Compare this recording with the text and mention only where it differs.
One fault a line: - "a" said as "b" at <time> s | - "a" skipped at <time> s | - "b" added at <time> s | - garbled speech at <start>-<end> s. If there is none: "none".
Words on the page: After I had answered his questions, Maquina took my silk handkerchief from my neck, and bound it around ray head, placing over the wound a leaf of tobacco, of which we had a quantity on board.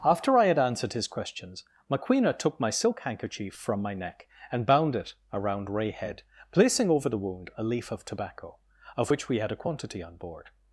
none